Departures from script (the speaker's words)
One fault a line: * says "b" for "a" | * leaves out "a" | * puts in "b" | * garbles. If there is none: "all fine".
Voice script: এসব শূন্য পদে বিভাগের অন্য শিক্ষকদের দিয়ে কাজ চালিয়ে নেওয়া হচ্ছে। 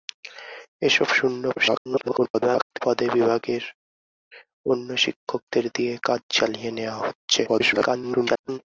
* garbles
* garbles